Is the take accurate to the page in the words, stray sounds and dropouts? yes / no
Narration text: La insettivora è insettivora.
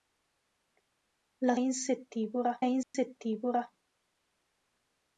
no